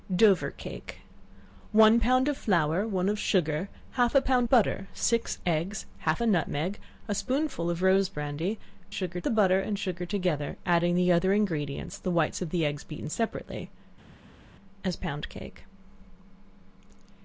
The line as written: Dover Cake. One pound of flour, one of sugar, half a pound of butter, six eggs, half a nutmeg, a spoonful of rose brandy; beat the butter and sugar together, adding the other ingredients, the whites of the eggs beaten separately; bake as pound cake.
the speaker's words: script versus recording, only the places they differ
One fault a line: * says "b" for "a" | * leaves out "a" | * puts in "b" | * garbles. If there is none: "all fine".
* leaves out "of"
* says "sugar" for "beat"
* leaves out "bake"